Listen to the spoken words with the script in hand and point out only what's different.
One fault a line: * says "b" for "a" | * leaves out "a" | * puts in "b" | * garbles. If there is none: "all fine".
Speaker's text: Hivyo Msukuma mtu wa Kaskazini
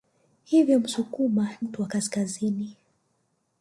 all fine